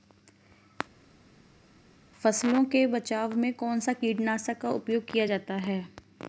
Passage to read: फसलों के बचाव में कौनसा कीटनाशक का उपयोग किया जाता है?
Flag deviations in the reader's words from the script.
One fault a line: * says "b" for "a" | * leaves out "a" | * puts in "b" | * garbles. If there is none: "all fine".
all fine